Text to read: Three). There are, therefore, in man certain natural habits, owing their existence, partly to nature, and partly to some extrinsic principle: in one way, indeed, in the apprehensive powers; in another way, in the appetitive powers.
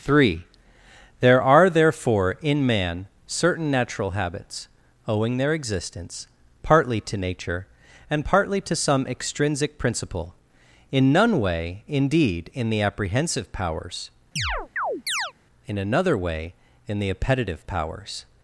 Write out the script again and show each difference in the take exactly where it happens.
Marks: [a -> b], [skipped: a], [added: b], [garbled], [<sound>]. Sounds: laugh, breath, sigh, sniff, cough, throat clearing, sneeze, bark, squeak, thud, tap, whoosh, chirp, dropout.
Three). There are, therefore, in man certain natural habits, owing their existence, partly to nature, and partly to some extrinsic principle: in [one -> none] way, indeed, in the apprehensive powers; [chirp] in another way, in the appetitive powers.